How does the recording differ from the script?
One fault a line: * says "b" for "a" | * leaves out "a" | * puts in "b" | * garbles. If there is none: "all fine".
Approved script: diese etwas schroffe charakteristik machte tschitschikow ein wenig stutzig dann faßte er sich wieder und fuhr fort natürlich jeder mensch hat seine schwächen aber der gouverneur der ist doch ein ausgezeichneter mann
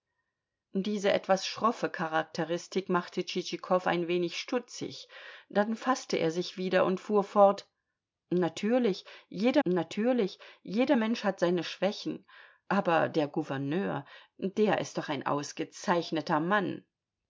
* puts in "natürlich jeder"